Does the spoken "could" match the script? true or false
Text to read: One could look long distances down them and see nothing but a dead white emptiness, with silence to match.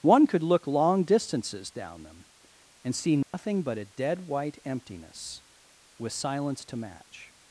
true